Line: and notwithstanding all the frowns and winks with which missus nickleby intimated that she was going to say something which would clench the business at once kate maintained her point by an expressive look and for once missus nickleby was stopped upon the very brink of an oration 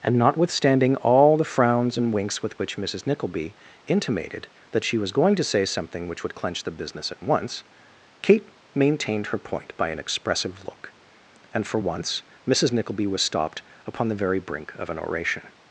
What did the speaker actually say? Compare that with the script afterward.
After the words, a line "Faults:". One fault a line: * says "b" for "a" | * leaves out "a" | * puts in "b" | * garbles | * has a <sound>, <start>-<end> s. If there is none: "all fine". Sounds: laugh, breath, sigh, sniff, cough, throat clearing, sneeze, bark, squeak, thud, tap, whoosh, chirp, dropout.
and notwithstanding all the frowns and winks with which missus nickleby intimated that she was going to say something which would clench the business at once kate maintained her point by an expressive look and for once missus nickleby was stopped upon the very brink of an oration
Faults:
all fine